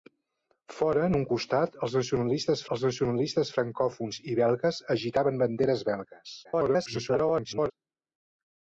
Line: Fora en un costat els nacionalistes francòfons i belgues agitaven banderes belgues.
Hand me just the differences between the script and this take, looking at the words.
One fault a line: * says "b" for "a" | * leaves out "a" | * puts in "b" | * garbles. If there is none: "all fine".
* puts in "els nacionalistes"
* garbles